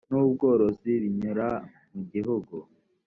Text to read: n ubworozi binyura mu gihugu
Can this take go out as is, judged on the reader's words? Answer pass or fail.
pass